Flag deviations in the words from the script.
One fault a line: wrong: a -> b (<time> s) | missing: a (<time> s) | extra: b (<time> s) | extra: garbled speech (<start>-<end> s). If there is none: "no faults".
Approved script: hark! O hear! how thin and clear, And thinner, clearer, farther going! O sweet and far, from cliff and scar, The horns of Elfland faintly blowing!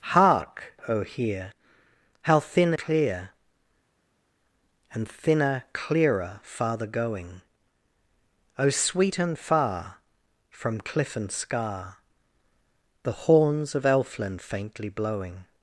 missing: and (2.7 s)